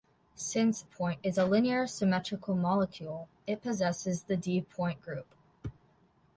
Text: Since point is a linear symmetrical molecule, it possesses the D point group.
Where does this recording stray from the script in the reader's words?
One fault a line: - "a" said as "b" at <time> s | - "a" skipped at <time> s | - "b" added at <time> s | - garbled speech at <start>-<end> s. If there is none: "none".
none